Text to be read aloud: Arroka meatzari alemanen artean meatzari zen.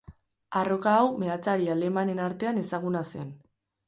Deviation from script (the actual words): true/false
true